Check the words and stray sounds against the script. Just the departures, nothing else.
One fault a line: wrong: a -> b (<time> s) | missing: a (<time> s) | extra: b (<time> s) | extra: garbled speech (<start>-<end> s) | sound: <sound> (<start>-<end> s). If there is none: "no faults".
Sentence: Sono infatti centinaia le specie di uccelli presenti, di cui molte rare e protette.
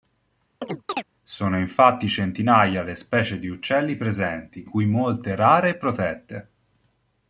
sound: chirp (0.6-1.0 s)
missing: di (4.7 s)